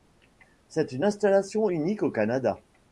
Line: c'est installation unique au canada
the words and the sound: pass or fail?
fail